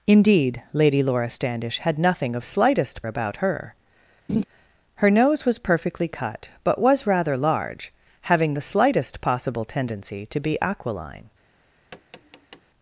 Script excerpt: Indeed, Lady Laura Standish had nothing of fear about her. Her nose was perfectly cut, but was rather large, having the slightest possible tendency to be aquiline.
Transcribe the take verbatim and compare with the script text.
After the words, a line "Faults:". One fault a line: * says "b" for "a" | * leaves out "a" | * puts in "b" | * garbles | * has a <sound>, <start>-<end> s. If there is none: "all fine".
Indeed, Lady Laura Standish had nothing of slightest about her. Her nose was perfectly cut, but was rather large, having the slightest possible tendency to be aquiline.
Faults:
* says "slightest" for "fear"
* has a laugh, 4.3-4.4 s
* has a tap, 11.9-12.6 s